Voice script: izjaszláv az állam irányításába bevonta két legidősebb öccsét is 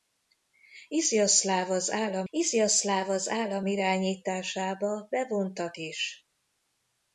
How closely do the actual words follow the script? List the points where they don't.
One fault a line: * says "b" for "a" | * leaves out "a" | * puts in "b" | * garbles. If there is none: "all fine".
* says "izjaszláv az állam irányításába bevonta" for "irányításába bevonta két legidősebb öccsét"